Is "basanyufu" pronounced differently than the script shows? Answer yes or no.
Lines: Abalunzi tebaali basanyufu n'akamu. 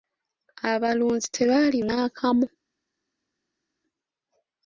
yes